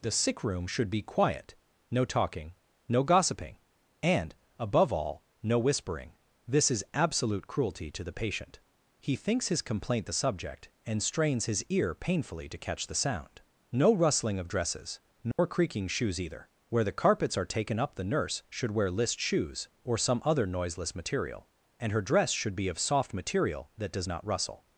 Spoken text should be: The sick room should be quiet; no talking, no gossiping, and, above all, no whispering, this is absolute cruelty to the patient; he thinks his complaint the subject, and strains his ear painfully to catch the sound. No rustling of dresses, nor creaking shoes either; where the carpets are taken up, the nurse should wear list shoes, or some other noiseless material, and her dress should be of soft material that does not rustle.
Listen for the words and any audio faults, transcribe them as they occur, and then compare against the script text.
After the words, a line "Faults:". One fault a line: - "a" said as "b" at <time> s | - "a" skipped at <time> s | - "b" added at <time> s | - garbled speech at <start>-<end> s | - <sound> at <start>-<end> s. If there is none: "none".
The sick room should be quiet; no talking, no gossiping, and, above all, no whispering, this is absolute cruelty to the patient; he thinks his complaint the subject, and strains his ear painfully to catch the sound. No rustling of dresses, nor creaking shoes either; where the carpets are taken up, the nurse should wear list shoes, or some other noiseless material, and her dress should be of soft material that does not rustle.
Faults:
- dropout at 15.3-15.4 s